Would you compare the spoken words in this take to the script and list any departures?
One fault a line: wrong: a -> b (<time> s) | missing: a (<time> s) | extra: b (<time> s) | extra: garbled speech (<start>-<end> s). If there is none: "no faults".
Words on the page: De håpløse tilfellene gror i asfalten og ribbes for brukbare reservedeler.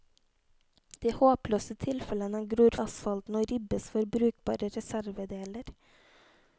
no faults